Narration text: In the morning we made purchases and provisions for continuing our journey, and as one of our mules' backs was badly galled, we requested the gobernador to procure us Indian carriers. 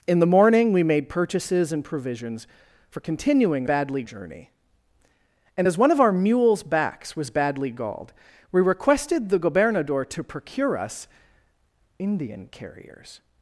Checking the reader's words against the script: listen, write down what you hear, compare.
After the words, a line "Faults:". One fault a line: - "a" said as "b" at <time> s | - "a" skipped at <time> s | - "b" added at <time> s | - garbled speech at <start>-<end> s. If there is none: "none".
In the morning we made purchases and provisions for continuing badly journey, and as one of our mules' backs was badly galled, we requested the gobernador to procure us Indian carriers.
Faults:
- "our" said as "badly" at 3.6 s